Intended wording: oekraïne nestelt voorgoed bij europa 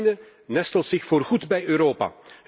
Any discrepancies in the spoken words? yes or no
yes